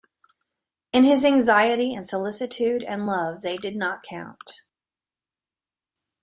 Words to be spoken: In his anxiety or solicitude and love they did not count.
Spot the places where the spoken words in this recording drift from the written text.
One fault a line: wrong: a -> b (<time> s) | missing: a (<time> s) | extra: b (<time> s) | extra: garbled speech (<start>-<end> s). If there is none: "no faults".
wrong: or -> and (1.9 s)